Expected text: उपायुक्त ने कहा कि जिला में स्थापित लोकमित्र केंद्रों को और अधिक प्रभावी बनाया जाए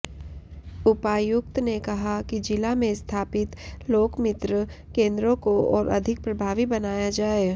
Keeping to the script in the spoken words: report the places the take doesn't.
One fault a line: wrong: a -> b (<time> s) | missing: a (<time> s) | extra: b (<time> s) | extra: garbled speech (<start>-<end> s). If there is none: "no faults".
no faults